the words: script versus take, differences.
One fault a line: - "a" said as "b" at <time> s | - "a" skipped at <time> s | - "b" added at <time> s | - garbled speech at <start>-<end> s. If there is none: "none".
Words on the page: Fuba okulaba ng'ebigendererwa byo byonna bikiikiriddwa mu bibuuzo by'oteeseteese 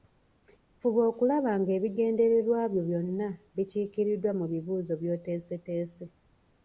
none